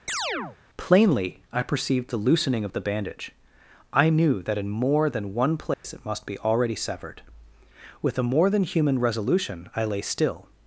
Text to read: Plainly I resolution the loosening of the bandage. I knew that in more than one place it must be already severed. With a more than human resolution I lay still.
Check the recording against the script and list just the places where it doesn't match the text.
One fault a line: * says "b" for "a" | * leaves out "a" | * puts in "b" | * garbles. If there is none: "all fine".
* says "perceived" for "resolution"